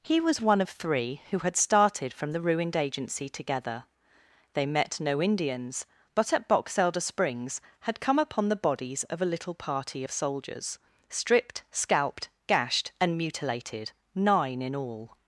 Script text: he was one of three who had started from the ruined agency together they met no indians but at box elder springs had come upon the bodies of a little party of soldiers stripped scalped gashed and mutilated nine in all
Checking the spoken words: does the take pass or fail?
pass